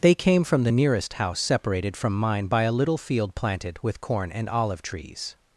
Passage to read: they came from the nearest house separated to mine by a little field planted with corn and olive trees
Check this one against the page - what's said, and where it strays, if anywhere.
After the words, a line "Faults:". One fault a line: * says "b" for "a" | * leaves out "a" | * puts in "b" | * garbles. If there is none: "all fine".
they came from the nearest house separated from mine by a little field planted with corn and olive trees
Faults:
* says "from" for "to"